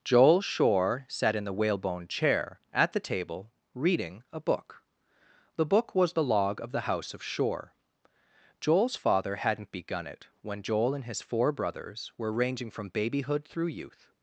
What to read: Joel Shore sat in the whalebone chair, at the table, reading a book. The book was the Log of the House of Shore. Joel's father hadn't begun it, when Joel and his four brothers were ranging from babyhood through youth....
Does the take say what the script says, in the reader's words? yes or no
yes